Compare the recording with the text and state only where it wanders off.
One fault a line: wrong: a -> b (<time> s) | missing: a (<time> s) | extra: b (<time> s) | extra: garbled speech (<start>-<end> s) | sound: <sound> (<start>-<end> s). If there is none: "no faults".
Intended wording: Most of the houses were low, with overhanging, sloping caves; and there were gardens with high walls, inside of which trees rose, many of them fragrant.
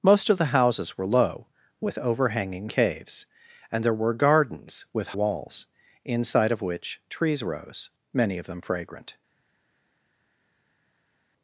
missing: sloping (2.7 s)
missing: high (5.1 s)